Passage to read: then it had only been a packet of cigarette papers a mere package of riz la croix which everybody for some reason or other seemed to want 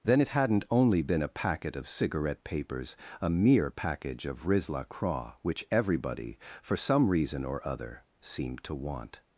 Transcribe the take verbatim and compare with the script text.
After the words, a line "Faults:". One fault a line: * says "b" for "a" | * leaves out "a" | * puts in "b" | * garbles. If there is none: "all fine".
then it hadn't only been a packet of cigarette papers a mere package of riz la croix which everybody for some reason or other seemed to want
Faults:
* says "hadn't" for "had"